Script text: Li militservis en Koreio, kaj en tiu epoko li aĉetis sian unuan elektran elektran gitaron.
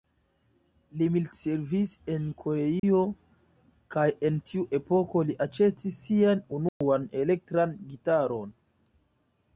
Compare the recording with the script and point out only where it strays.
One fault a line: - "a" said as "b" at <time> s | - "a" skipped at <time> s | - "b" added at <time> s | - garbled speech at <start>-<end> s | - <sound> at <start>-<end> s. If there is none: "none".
- dropout at 2.8-2.8 s
- dropout at 6.7-6.8 s
- "elektran" skipped at 7.7 s